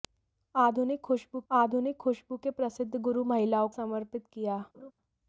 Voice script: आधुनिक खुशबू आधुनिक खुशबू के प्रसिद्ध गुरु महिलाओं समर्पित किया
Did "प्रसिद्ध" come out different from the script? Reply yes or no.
no